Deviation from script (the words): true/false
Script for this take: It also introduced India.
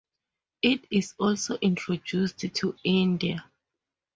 true